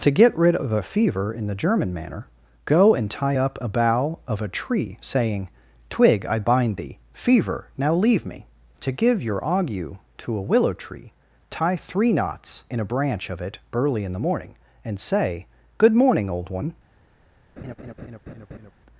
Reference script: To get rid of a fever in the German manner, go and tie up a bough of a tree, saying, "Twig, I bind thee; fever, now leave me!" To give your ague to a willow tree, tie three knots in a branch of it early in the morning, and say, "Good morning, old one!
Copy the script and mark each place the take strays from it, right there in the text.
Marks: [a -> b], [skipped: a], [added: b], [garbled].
To get rid of a fever in the German manner, go and tie up a bough of a tree, saying, "Twig, I bind thee; fever, now leave me!" To give your ague to a willow tree, tie three knots in a branch of it early in the morning, and say, "Good morning, old one!